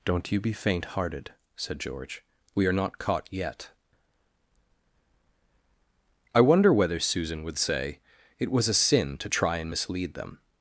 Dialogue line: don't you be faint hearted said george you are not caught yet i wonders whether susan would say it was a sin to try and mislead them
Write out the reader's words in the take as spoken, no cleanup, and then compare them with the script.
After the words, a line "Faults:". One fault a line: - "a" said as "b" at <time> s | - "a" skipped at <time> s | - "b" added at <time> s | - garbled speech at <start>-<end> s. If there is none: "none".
don't you be faint hearted said george we are not caught yet i wonder whether susan would say it was a sin to try and mislead them
Faults:
- "you" said as "we" at 2.6 s
- "wonders" said as "wonder" at 6.4 s